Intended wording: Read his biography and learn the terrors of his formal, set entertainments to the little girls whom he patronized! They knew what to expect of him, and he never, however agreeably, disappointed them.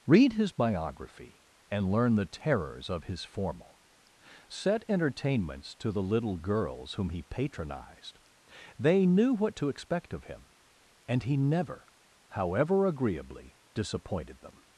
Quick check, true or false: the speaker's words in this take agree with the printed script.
true